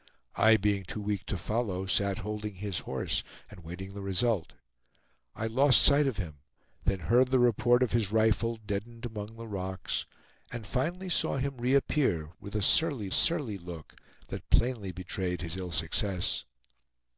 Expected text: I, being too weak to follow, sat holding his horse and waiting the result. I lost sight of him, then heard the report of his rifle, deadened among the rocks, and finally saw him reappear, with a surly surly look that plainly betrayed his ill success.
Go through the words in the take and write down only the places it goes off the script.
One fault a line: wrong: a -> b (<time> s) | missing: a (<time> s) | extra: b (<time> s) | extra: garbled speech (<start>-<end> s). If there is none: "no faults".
no faults